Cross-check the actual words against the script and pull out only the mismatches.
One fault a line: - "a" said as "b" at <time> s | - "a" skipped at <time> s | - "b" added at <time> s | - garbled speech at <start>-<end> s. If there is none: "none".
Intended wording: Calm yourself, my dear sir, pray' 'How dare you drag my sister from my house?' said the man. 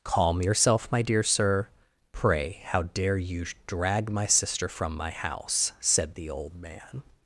- "old" added at 6.3 s